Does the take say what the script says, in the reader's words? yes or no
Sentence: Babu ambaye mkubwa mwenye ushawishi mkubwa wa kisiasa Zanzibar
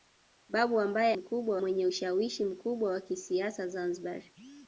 yes